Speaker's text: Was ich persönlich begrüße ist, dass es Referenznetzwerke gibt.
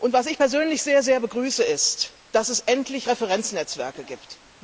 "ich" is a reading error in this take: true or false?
false